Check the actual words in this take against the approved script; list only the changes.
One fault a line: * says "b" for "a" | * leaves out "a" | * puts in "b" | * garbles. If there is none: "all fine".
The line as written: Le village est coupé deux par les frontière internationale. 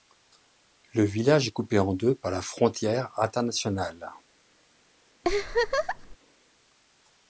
* puts in "en"
* says "la" for "les"